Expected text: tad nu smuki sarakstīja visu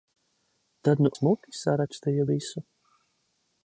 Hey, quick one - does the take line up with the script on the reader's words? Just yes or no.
yes